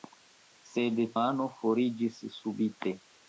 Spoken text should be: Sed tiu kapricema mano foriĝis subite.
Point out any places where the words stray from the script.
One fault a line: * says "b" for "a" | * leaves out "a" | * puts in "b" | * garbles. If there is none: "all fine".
* leaves out "tiu kapricema"